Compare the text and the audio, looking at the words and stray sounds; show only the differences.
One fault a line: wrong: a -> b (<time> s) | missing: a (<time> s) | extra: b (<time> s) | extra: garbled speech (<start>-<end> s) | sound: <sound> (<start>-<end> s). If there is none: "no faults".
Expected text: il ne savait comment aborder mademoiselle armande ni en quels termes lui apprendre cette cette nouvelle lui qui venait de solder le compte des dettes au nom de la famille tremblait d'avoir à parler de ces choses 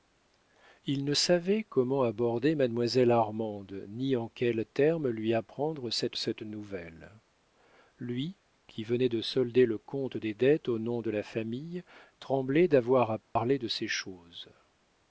sound: dropout (13.2-13.4 s)